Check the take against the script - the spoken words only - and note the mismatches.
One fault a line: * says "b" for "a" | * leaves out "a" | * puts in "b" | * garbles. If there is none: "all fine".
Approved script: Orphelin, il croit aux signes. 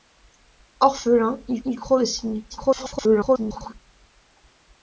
* puts in "il"
* garbles